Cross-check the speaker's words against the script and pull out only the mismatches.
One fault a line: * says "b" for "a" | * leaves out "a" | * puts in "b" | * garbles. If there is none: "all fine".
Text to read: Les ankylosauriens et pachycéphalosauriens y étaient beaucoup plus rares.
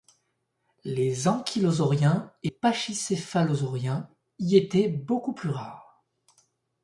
all fine